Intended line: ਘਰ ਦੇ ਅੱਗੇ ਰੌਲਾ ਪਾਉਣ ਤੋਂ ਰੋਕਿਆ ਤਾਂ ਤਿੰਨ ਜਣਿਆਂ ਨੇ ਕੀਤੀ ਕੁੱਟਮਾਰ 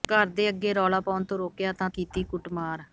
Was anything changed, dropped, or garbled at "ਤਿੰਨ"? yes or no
yes